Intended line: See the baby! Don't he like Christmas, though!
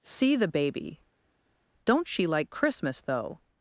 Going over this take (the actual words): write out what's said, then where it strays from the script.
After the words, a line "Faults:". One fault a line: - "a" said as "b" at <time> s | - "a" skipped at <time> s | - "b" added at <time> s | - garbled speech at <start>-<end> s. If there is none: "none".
See the baby! Don't she like Christmas, though!
Faults:
- "he" said as "she" at 2.1 s